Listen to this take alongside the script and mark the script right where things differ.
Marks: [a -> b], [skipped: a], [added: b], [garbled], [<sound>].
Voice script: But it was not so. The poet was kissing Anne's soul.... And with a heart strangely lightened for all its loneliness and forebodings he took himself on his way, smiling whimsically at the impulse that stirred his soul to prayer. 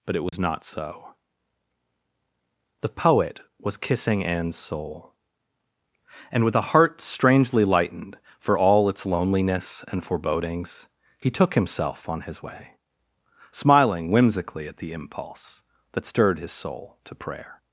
But it was [dropout] not so. The poet was kissing Anne's soul.... And with a heart strangely lightened for all its loneliness and forebodings he took himself on his way, smiling whimsically at the impulse that stirred his soul to prayer.